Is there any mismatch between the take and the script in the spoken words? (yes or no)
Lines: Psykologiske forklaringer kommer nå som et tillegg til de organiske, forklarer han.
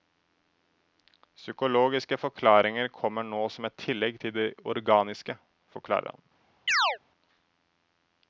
no